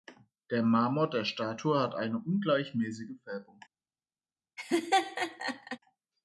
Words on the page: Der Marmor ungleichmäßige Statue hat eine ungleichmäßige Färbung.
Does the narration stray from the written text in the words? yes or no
yes